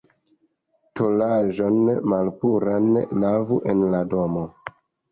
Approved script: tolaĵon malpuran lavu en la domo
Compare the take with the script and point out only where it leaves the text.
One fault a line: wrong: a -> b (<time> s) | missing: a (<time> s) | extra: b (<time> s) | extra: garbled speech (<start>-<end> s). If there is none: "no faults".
no faults